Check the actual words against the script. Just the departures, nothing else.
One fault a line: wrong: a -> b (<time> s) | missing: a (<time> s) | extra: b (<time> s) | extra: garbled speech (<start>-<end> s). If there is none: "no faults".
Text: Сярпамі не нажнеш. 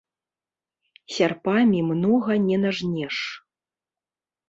extra: многа (1.9 s)